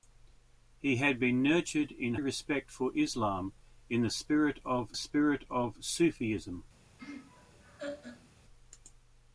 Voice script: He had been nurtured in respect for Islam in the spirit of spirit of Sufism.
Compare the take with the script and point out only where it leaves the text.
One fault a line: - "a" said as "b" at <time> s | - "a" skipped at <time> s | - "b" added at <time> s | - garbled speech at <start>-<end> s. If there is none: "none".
none